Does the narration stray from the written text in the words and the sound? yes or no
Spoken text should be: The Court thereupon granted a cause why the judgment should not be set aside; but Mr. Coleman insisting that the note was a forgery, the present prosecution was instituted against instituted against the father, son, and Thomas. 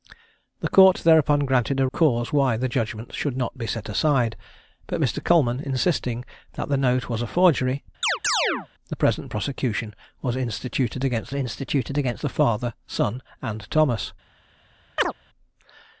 yes